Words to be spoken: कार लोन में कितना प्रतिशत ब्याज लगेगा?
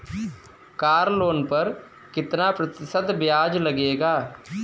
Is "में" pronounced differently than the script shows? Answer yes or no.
yes